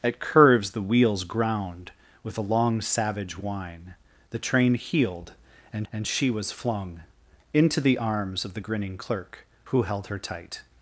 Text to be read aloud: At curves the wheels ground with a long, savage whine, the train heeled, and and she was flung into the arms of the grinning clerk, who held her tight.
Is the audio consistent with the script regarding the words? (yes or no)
yes